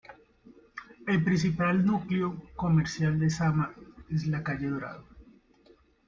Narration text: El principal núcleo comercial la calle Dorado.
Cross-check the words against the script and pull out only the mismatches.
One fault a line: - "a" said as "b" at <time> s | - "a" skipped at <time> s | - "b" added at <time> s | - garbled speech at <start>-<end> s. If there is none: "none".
- "de Sama es" added at 3.2 s